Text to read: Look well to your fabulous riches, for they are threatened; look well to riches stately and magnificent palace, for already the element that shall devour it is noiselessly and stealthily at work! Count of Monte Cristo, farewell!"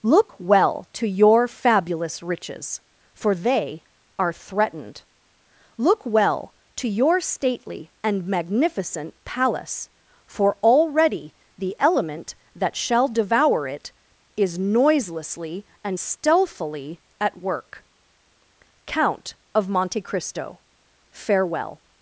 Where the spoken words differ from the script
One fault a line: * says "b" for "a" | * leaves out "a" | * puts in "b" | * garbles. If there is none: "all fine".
* says "your" for "riches"